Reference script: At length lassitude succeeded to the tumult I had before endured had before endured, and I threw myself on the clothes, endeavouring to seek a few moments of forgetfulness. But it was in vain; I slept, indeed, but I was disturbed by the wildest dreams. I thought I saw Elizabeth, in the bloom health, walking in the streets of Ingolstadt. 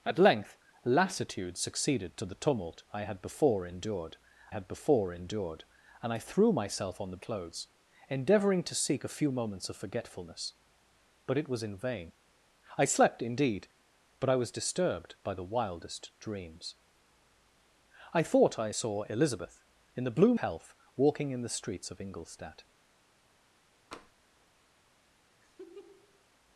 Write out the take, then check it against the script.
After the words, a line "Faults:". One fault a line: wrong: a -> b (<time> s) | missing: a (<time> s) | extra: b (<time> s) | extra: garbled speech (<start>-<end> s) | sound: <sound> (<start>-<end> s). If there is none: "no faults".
At length lassitude succeeded to the tumult I had before endured had before endured, and I threw myself on the clothes, endeavouring to seek a few moments of forgetfulness. But it was in vain; I slept, indeed, but I was disturbed by the wildest dreams. I thought I saw Elizabeth, in the bloom health, walking in the streets of Ingolstadt.
Faults:
sound: tap (23.9-24.1 s)
sound: laugh (25.4-26.2 s)